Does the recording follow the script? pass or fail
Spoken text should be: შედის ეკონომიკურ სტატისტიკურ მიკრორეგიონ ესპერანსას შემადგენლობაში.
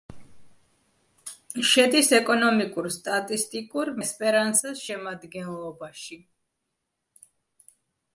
fail